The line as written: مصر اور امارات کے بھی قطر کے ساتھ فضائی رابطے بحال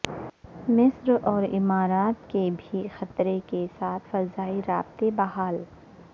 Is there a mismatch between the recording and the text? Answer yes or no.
no